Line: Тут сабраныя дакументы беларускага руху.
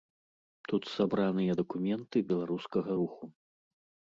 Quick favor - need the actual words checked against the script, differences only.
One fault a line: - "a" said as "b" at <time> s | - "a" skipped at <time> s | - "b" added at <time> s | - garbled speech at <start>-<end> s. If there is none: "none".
none